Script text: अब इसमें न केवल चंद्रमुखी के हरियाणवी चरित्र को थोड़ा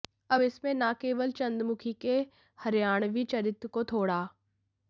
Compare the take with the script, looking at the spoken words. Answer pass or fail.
pass